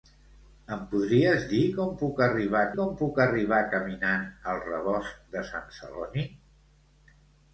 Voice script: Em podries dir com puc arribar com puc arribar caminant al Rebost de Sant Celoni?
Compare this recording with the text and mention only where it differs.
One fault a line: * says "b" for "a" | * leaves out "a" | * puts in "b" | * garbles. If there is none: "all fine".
all fine